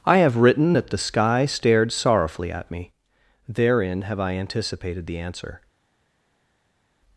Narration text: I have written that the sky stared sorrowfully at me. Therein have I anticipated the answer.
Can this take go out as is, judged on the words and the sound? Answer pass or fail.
pass